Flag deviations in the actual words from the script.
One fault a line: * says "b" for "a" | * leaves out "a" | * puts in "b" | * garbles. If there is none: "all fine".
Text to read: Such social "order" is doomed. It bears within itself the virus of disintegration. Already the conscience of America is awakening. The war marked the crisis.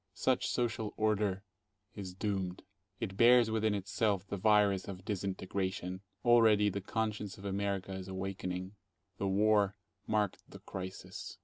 all fine